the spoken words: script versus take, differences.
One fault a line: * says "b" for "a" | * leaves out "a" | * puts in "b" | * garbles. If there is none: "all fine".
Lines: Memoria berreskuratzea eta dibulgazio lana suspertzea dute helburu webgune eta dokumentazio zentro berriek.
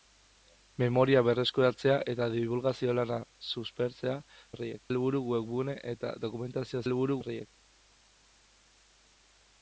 * says "berriek" for "dute"
* says "helburu" for "zentro"